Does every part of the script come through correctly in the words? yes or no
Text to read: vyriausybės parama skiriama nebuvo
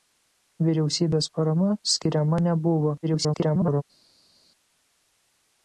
no